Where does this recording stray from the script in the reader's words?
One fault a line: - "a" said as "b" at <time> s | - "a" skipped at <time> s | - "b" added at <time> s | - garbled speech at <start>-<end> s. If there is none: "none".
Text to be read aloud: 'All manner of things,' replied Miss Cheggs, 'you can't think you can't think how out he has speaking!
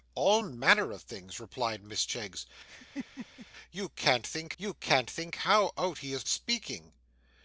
none